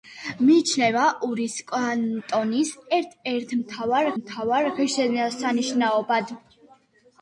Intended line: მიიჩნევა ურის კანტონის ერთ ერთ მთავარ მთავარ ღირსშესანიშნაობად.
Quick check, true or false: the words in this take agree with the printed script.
true